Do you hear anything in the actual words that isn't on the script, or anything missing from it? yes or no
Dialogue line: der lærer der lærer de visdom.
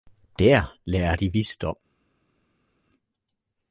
yes